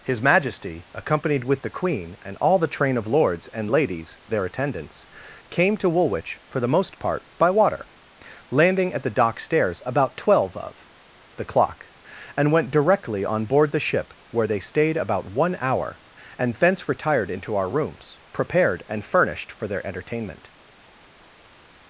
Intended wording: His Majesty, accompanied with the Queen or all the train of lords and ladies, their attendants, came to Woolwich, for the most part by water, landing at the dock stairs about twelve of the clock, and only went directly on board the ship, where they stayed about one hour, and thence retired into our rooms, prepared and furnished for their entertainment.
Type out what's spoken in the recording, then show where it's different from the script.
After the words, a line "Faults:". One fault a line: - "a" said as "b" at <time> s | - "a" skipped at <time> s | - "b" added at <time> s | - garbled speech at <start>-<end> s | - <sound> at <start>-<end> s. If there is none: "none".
His Majesty, accompanied with the Queen and all the train of lords and ladies, their attendants, came to Woolwich, for the most part by water, landing at the dock stairs about twelve of the clock, and went directly on board the ship, where they stayed about one hour, and thence retired into our rooms, prepared and furnished for their entertainment.
Faults:
- "or" said as "and" at 2.2 s
- "only" skipped at 12.5 s